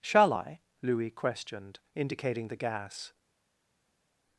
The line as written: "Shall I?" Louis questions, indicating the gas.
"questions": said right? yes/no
no